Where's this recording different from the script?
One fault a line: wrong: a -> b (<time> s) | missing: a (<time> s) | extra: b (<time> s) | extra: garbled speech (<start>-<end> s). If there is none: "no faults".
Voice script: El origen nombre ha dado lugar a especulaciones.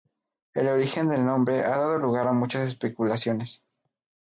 extra: del (1.1 s)
extra: muchas (2.3 s)